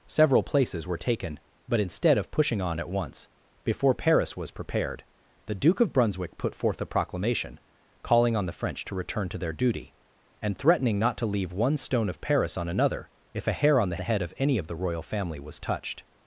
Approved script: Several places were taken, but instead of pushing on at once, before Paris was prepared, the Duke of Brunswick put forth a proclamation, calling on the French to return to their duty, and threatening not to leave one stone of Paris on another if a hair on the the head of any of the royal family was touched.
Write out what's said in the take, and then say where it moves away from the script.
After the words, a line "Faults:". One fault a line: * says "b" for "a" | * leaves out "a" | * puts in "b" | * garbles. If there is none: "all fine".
Several places were taken, but instead of pushing on at once, before Paris was prepared, the Duke of Brunswick put forth a proclamation, calling on the French to return to their duty, and threatening not to leave one stone of Paris on another if a hair on the the head of any of the royal family was touched.
Faults:
all fine